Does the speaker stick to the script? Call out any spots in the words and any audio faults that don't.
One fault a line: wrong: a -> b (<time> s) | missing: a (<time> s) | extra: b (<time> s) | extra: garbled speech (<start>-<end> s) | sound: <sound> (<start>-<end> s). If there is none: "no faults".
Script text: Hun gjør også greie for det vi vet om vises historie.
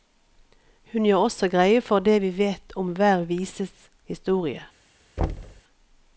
extra: hver (3.0 s)
sound: thud (5.2-5.6 s)